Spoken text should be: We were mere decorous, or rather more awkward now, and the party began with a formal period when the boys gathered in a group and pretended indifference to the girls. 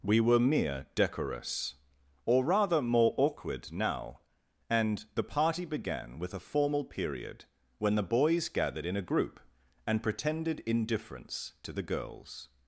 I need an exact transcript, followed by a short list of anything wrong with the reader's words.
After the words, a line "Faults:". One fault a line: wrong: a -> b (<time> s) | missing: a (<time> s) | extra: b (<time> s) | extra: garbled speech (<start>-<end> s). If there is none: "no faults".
We were mere decorous, or rather more awkward now, and the party began with a formal period when the boys gathered in a group and pretended indifference to the girls.
Faults:
no faults